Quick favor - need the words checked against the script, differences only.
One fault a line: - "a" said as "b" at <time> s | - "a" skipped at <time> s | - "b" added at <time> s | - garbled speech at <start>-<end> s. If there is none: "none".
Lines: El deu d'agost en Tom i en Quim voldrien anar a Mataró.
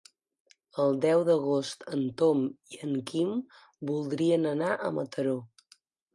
none